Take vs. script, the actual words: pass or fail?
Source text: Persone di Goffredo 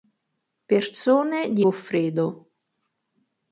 pass